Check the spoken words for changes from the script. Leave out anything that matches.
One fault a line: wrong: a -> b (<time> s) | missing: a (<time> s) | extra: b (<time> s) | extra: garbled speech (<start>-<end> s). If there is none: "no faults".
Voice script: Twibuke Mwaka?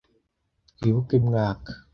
no faults